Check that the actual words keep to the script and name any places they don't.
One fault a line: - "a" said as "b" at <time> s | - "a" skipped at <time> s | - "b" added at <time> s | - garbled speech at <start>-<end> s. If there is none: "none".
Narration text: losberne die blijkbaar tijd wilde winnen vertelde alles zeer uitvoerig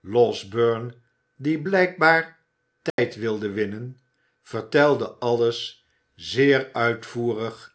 none